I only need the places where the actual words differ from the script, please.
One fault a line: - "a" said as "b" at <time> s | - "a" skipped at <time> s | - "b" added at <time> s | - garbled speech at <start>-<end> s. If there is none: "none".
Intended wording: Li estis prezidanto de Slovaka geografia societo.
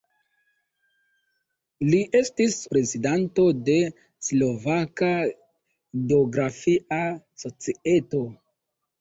none